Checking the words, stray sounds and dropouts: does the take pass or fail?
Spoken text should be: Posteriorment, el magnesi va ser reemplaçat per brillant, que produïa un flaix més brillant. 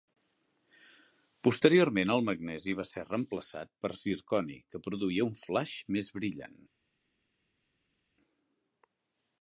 fail